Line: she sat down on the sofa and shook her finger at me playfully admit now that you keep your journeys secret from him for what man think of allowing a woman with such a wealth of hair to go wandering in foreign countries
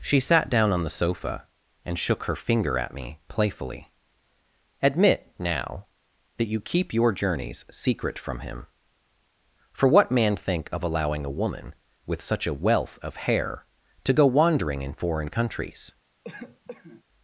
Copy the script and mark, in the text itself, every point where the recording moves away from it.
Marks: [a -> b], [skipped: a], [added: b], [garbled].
she sat down on the sofa and shook her finger at me playfully admit now that you keep your journeys secret from him for what man think of allowing a woman with such a wealth of hair to go wandering in foreign countries